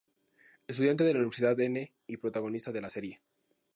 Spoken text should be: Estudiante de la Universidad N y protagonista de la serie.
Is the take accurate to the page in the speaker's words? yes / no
yes